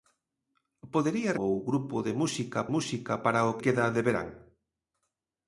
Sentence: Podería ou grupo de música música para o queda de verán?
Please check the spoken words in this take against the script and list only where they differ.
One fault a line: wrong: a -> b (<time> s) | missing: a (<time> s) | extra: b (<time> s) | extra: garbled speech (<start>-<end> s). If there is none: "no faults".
no faults